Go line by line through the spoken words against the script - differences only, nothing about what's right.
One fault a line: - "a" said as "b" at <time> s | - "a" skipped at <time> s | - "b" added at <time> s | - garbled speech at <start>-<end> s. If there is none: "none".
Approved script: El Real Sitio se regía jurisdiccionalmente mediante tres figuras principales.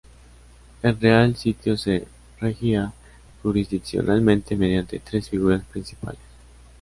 none